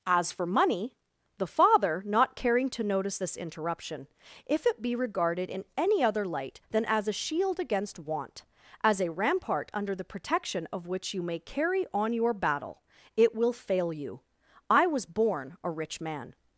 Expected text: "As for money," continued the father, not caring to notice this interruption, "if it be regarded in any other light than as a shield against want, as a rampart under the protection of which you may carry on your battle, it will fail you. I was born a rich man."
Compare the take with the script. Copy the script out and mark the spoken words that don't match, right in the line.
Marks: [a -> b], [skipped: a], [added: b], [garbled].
"As for money," [skipped: continued] the father, not caring to notice this interruption, "if it be regarded in any other light than as a shield against want, as a rampart under the protection of which you may carry on your battle, it will fail you. I was born a rich man."